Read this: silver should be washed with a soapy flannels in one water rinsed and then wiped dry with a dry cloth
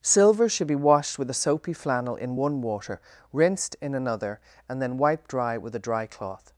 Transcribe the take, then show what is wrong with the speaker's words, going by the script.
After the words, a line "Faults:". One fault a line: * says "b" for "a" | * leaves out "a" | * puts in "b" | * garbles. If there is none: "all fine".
silver should be washed with a soapy flannel in one water rinsed in another and then wiped dry with a dry cloth
Faults:
* says "flannel" for "flannels"
* puts in "in another"